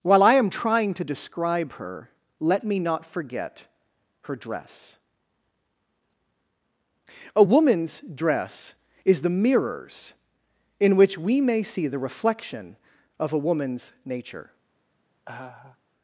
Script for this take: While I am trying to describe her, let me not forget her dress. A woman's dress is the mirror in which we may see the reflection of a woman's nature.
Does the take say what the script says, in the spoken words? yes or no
no